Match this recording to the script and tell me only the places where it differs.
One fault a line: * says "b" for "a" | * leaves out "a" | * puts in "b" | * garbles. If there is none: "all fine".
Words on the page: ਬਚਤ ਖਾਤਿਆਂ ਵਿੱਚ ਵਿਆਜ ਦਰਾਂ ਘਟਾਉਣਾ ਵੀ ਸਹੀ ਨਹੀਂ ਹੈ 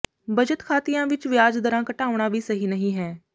all fine